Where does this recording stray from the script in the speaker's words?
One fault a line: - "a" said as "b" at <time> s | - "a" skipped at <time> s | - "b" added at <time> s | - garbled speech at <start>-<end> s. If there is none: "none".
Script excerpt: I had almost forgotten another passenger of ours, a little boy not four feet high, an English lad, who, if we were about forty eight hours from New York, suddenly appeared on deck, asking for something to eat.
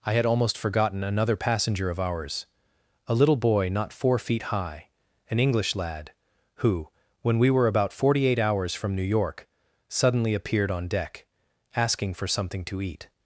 - "if" said as "when" at 7.2 s